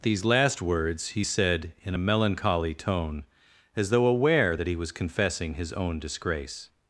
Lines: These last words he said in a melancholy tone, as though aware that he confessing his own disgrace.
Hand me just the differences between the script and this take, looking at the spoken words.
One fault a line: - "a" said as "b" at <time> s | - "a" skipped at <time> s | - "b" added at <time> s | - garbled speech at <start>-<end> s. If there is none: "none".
- "was" added at 4.8 s